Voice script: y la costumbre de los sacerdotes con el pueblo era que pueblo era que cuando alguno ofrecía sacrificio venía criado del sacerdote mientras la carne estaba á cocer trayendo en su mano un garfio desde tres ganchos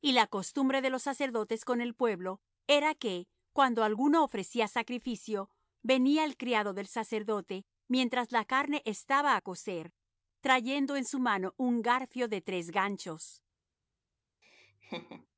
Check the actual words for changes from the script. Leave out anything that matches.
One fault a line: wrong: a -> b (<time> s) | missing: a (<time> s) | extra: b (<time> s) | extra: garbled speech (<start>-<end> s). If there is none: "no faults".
missing: pueblo era que (3.3 s)
extra: el (6.2 s)
wrong: desde -> de (12.3 s)